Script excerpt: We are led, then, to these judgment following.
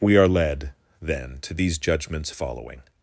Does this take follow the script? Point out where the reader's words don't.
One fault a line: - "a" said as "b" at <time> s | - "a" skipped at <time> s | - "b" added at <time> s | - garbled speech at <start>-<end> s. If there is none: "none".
- "judgment" said as "judgments" at 1.8 s